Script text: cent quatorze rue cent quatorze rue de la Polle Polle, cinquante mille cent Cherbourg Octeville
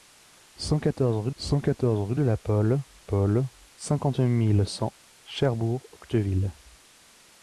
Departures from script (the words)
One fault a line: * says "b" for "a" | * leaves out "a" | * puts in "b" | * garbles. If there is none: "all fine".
all fine